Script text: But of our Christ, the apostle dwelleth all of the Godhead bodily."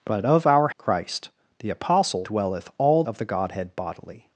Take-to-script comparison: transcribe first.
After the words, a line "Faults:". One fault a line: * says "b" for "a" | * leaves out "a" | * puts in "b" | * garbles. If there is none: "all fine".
But of our Christ, the apostle dwelleth all of the Godhead bodily."
Faults:
all fine